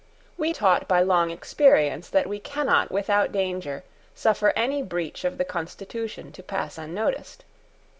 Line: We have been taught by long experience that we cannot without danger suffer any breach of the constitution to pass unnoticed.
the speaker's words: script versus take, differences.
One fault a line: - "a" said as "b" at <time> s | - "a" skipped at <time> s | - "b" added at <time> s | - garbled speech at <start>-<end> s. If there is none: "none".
- "have been" skipped at 0.5 s